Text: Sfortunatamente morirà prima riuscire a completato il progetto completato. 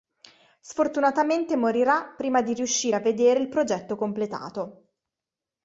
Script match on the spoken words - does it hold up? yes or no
no